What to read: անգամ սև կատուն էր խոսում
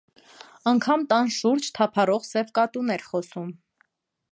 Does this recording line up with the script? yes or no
no